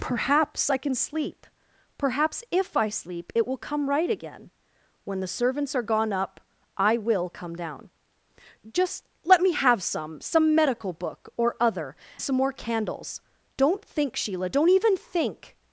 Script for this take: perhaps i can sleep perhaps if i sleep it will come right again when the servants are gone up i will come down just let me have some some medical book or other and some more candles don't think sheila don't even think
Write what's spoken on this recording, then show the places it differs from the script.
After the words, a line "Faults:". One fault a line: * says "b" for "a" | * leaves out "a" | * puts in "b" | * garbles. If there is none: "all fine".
perhaps i can sleep perhaps if i sleep it will come right again when the servants are gone up i will come down just let me have some some medical book or other some more candles don't think sheila don't even think
Faults:
* leaves out "and"